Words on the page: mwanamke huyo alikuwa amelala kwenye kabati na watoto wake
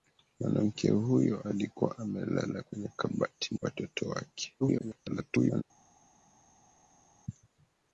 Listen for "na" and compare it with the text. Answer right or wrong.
wrong